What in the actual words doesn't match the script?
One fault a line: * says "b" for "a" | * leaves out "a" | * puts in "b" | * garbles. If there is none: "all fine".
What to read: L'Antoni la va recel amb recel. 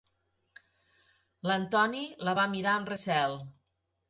* says "mirar" for "recel"